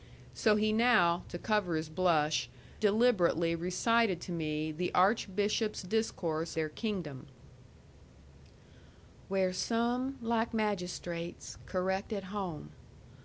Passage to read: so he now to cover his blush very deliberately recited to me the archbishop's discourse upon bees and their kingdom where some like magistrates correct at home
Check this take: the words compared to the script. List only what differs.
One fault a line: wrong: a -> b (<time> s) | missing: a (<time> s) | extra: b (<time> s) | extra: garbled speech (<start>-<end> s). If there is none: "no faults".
missing: very (2.5 s)
missing: upon bees and (6.6 s)